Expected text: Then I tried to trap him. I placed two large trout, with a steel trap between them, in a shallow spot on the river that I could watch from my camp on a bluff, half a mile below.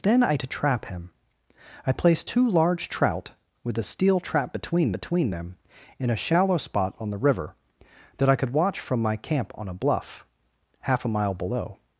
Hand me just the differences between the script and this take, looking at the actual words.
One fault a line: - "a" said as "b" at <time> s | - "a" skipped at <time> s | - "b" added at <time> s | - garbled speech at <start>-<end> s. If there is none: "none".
- "tried" skipped at 0.4 s
- "between" added at 4.9 s